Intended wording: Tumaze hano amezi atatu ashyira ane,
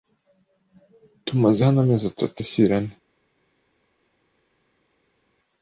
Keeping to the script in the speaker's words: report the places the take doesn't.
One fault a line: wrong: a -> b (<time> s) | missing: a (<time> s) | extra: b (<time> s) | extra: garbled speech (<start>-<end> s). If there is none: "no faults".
no faults